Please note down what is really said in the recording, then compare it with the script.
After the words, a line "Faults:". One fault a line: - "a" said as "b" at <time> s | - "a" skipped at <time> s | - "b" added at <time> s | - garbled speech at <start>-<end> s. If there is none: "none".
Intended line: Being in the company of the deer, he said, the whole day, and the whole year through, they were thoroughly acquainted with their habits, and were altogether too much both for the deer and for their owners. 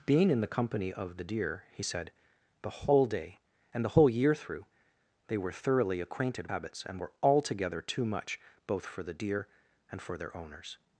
Being in the company of the deer, he said, the whole day, and the whole year through, they were thoroughly acquainted habits, and were altogether too much both for the deer and for their owners.
Faults:
- "with their" skipped at 6.5 s